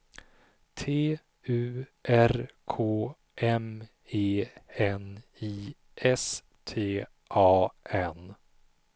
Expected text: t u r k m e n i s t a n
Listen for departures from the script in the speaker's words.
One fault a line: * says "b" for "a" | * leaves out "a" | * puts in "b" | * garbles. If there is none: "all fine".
all fine